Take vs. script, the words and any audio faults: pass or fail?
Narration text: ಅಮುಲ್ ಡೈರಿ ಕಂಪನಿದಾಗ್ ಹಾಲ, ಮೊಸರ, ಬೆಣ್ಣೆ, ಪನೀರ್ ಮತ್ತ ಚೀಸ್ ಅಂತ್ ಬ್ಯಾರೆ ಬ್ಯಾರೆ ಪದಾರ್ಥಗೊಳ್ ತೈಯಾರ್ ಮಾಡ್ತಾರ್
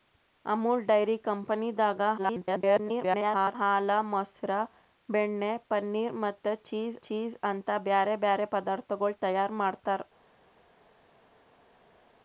fail